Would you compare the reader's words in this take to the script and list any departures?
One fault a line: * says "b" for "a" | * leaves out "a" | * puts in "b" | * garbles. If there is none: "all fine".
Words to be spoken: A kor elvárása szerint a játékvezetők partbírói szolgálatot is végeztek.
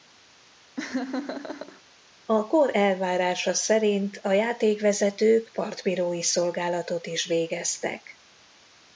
all fine